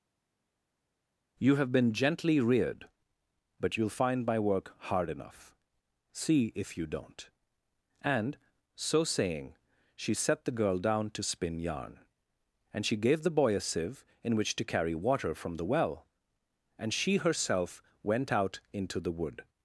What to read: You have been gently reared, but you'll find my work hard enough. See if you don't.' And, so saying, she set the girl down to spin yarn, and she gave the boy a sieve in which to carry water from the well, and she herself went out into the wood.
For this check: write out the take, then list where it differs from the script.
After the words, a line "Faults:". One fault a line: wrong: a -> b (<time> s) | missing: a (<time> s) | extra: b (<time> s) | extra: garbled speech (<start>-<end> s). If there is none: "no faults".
You have been gently reared, but you'll find my work hard enough. See if you don't.' And, so saying, she set the girl down to spin yarn, and she gave the boy a sieve in which to carry water from the well, and she herself went out into the wood.
Faults:
no faults